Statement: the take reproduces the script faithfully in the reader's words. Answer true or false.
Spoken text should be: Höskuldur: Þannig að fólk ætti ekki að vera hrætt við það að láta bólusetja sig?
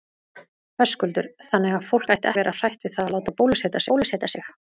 false